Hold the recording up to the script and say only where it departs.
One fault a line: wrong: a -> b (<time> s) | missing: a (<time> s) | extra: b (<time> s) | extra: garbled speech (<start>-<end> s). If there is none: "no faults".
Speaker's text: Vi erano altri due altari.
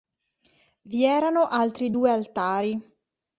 no faults